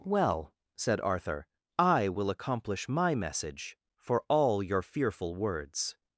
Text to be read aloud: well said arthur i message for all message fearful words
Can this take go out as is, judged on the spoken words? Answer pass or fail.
fail